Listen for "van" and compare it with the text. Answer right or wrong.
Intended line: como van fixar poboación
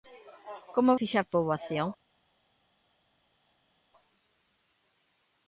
wrong